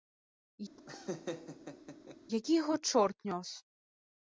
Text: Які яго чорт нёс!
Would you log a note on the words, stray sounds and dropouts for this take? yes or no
yes